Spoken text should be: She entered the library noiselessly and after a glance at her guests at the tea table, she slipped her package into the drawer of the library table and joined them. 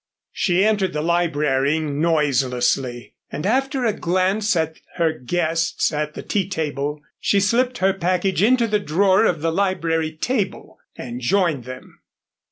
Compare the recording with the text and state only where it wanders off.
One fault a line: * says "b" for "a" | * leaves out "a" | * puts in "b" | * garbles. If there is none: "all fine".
all fine